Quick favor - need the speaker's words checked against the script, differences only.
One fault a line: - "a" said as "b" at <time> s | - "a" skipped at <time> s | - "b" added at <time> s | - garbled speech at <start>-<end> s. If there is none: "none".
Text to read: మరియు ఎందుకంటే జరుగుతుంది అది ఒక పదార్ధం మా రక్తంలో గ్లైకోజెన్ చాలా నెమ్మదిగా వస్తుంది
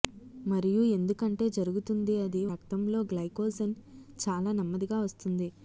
- "ఒక పదార్ధం మా" skipped at 2.4 s